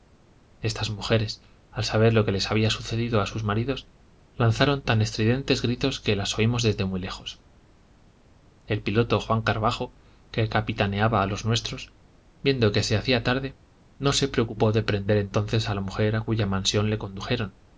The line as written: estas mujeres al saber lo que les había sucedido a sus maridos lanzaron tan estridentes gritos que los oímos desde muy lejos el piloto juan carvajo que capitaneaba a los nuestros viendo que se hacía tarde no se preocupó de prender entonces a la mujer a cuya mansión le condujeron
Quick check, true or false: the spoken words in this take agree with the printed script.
false